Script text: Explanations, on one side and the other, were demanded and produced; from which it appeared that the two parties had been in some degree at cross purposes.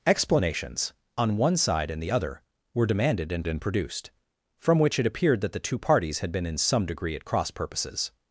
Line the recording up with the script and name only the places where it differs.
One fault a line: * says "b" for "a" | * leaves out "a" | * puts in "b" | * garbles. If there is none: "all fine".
* puts in "and"